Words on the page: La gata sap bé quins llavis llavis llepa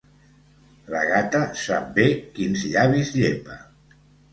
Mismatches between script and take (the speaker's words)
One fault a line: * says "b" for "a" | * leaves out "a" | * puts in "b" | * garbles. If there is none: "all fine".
* leaves out "llavis"